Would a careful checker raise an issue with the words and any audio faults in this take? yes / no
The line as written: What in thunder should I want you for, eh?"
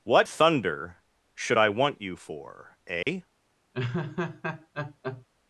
yes